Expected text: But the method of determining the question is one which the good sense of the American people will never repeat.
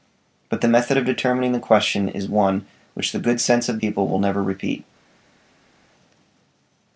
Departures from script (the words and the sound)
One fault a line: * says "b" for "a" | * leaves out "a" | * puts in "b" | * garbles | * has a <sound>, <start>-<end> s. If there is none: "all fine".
* leaves out "the American"